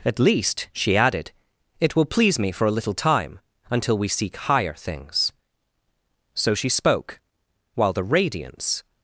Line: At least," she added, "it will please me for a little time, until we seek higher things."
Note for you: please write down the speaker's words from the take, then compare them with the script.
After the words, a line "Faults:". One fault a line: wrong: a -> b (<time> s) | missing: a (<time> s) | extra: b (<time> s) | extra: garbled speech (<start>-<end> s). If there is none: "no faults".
At least," she added, "it will please me for a little time, until we seek higher things." So she spoke, while the radiance
Faults:
extra: So she spoke while the radiance (6.3 s)